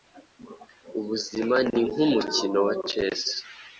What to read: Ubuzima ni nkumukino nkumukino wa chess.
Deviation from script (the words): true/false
true